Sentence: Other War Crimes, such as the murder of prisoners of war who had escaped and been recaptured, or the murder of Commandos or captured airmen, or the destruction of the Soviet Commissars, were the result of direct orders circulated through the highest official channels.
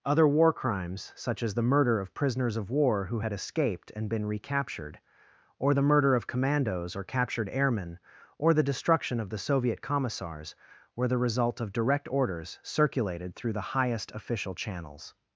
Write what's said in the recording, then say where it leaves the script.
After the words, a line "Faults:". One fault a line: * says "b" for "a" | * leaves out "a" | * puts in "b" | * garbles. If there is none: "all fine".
Other War Crimes, such as the murder of prisoners of war who had escaped and been recaptured, or the murder of Commandos or captured airmen, or the destruction of the Soviet Commissars, were the result of direct orders circulated through the highest official channels.
Faults:
all fine